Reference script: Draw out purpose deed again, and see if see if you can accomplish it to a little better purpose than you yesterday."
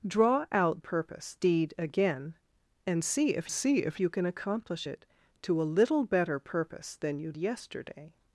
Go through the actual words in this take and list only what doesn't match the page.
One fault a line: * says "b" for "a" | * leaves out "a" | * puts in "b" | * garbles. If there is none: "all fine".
all fine